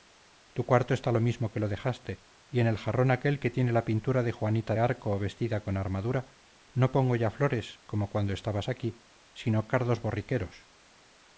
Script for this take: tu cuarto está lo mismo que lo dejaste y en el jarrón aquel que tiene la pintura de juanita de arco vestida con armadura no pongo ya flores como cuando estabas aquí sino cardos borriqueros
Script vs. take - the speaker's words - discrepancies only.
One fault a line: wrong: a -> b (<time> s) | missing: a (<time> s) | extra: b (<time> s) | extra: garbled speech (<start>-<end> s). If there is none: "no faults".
missing: de (4.8 s)